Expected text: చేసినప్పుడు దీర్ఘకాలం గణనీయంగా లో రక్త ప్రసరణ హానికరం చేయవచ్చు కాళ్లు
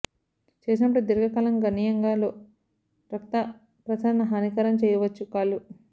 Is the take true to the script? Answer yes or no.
yes